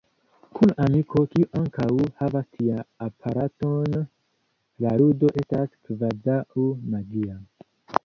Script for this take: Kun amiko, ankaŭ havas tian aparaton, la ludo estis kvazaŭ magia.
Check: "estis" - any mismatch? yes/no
yes